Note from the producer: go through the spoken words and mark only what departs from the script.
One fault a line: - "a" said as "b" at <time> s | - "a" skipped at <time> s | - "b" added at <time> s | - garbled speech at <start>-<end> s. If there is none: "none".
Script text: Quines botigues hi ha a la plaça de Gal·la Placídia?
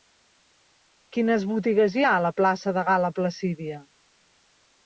none